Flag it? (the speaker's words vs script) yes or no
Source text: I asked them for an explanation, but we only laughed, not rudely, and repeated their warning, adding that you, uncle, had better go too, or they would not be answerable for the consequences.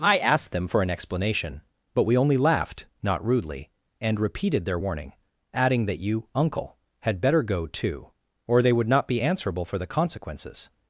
no